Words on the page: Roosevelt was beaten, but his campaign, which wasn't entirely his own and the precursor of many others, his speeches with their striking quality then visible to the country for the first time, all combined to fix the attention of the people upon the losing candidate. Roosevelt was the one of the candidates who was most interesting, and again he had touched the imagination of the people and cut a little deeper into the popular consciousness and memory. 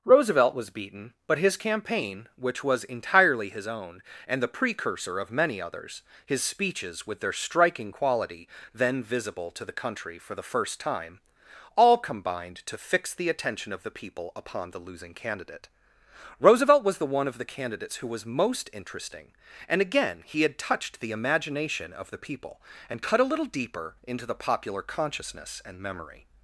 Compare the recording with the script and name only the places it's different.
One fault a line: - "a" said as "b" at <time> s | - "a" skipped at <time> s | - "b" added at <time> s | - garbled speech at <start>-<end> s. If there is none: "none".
- "wasn't" said as "was" at 2.6 s